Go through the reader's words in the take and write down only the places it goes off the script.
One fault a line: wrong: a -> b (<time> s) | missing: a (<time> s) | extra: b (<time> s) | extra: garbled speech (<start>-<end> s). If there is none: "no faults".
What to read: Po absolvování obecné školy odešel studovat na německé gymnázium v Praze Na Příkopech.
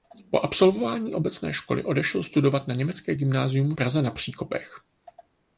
missing: v (3.7 s)